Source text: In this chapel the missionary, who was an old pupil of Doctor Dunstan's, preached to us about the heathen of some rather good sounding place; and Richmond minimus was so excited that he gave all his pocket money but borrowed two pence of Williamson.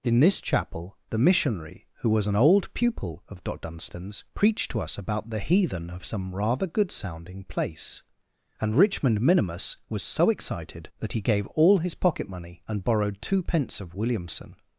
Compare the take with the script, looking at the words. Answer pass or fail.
fail